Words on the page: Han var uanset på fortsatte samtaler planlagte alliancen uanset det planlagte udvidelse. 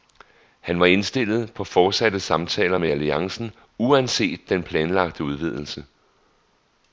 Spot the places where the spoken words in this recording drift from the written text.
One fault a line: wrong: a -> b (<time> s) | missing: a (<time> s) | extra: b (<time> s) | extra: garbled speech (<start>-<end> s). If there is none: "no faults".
wrong: uanset -> indstillet (0.8 s)
wrong: planlagte -> med (2.7 s)
wrong: det -> den (4.5 s)